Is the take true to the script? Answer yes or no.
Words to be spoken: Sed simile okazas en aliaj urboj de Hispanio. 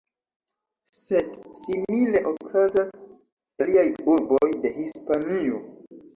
no